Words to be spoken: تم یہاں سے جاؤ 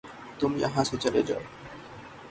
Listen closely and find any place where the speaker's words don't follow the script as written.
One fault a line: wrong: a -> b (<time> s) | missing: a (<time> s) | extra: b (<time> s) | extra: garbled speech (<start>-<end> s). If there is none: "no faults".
extra: چلے (1.0 s)